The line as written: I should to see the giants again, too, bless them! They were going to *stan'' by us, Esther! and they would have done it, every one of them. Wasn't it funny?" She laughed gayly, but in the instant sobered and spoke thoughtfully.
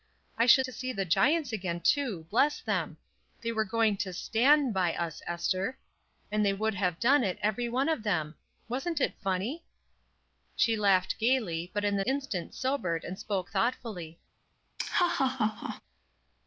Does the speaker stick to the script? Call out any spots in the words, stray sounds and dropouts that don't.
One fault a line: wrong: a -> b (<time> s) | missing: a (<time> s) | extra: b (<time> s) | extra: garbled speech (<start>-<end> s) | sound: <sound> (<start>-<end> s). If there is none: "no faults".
sound: laugh (14.8-15.8 s)